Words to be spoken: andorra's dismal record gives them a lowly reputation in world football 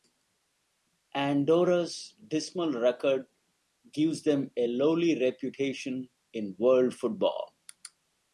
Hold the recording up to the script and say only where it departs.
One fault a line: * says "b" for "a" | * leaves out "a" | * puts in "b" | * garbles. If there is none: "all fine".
all fine